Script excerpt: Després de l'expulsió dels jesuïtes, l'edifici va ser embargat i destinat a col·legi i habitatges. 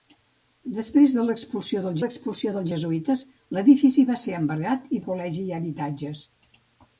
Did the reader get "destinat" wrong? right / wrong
wrong